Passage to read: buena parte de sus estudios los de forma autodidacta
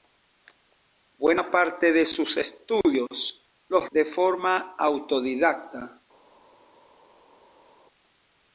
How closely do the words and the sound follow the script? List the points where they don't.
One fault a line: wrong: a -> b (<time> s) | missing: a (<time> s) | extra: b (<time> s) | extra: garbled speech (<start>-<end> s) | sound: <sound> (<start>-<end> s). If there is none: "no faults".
no faults